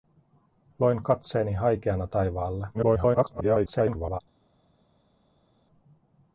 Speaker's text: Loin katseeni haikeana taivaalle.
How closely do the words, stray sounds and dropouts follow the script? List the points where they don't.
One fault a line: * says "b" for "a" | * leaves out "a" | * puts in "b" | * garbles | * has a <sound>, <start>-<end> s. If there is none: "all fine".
* garbles